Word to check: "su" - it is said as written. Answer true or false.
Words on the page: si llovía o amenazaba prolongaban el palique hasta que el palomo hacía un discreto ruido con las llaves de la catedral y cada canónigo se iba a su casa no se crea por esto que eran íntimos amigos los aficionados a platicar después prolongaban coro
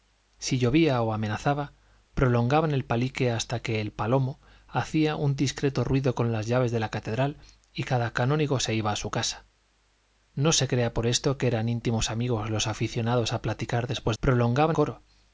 true